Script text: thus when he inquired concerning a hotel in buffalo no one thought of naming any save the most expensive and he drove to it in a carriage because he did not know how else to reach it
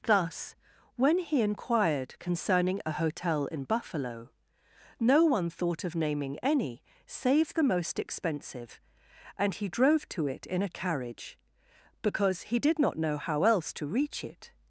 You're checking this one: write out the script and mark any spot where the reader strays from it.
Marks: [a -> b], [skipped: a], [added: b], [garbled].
thus when he inquired concerning a hotel in buffalo no one thought of naming any save the most expensive and he drove to it in a carriage because he did not know how else to reach it